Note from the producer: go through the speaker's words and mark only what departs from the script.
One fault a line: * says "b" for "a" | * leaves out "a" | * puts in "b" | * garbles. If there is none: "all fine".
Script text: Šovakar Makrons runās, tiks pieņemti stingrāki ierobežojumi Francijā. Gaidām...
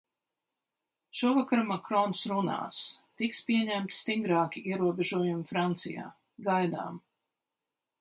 all fine